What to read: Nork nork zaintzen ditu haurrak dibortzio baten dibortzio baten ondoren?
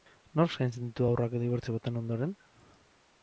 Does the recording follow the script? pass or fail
fail